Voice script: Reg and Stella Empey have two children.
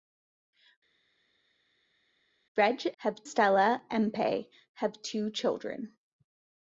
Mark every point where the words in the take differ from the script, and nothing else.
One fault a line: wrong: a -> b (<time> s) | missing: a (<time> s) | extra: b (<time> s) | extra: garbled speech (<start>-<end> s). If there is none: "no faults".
wrong: and -> have (3.0 s)